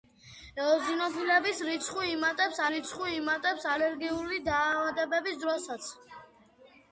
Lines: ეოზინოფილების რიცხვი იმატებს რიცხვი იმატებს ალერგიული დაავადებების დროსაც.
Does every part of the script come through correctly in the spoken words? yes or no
yes